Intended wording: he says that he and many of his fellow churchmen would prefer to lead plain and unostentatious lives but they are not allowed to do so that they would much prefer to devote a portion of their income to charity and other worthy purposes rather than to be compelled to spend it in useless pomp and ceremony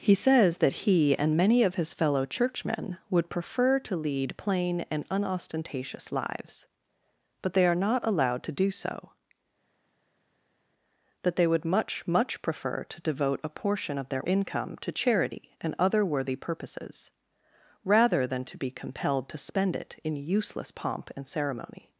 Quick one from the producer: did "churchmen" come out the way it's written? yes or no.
yes